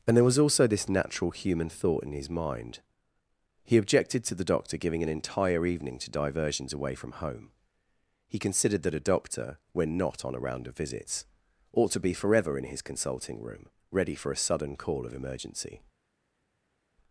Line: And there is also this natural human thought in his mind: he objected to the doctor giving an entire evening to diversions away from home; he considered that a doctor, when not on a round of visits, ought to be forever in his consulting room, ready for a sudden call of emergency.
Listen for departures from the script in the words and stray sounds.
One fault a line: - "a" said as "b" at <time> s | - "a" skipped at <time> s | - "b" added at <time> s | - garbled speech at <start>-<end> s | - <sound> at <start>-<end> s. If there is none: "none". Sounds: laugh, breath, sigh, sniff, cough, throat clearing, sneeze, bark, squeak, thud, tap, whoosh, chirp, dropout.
- "is" said as "was" at 0.2 s